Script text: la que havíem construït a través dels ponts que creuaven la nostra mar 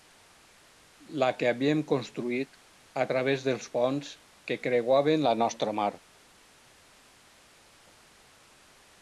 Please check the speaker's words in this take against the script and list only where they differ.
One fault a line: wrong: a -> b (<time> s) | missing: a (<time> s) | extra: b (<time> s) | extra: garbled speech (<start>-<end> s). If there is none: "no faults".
no faults